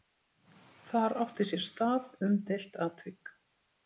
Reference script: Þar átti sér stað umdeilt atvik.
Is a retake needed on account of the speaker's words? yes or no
no